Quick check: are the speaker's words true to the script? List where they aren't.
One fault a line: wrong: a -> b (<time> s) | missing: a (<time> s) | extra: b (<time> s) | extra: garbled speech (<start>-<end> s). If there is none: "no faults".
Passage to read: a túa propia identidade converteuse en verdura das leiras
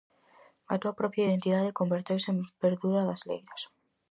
no faults